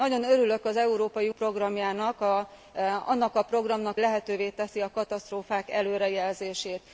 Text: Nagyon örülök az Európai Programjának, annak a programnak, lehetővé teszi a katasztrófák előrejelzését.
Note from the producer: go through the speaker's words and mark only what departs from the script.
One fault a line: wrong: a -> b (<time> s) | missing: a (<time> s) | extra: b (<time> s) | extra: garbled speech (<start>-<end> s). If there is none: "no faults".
no faults